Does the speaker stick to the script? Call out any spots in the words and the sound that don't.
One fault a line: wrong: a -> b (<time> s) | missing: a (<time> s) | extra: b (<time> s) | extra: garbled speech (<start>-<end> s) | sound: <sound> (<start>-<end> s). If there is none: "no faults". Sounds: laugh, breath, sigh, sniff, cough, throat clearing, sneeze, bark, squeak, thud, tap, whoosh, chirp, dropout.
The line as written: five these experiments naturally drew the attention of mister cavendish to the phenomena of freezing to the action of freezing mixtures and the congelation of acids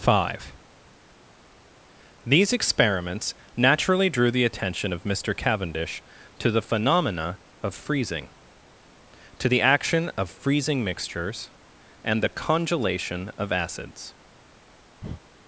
sound: breath (15.0-15.2 s)